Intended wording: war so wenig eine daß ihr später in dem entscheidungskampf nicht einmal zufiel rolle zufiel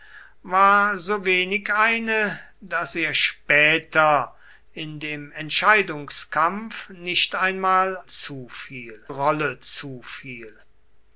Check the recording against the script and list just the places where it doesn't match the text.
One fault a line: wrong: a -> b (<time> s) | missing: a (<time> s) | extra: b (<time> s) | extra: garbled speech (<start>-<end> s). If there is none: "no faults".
no faults